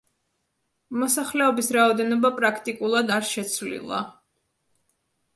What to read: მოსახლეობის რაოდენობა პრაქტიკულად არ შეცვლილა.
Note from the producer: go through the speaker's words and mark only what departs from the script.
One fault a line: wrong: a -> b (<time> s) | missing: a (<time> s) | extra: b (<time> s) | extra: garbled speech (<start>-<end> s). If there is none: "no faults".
no faults